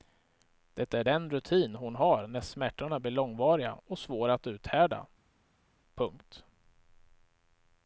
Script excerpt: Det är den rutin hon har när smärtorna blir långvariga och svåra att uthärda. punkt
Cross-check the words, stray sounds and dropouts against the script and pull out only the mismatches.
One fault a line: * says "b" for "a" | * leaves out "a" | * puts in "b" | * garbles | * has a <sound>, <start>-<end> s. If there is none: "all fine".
all fine